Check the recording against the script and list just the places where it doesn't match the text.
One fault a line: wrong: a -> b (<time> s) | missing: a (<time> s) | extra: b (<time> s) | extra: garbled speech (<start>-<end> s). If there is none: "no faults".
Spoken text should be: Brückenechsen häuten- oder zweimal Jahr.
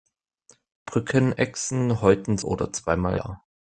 no faults